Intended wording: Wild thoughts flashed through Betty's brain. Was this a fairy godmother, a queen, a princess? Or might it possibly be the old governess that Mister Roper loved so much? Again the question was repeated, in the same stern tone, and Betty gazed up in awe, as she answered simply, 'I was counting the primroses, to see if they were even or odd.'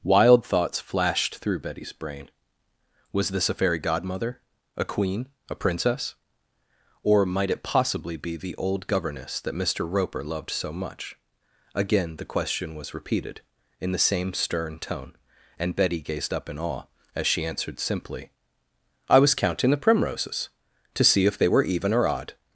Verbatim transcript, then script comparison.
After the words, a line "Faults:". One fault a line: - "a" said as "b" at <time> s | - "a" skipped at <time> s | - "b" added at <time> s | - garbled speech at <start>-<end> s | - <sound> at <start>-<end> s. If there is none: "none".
Wild thoughts flashed through Betty's brain. Was this a fairy godmother, a queen, a princess? Or might it possibly be the old governess that Mister Roper loved so much? Again the question was repeated, in the same stern tone, and Betty gazed up in awe, as she answered simply, 'I was counting the primroses, to see if they were even or odd.'
Faults:
none